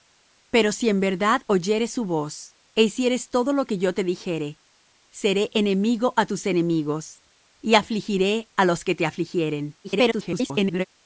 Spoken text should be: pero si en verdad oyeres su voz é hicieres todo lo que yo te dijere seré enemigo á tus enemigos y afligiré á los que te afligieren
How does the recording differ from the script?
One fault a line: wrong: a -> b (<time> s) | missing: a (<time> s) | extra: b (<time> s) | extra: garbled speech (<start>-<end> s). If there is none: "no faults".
extra: garbled speech (9.8-10.8 s)